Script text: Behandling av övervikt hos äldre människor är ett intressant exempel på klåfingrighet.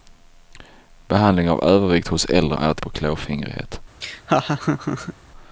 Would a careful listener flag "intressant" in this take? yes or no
yes